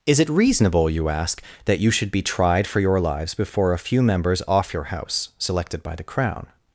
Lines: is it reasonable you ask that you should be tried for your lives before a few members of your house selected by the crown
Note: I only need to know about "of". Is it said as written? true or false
false